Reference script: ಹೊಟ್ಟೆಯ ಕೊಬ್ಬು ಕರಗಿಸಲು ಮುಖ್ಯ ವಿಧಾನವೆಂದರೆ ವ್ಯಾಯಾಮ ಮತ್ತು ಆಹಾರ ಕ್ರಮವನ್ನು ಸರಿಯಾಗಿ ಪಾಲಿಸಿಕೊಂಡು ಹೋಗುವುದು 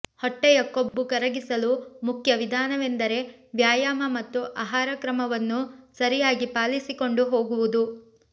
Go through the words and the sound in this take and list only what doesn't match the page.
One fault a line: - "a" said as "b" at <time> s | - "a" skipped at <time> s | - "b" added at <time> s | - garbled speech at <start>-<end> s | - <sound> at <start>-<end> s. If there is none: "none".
- dropout at 0.9-0.9 s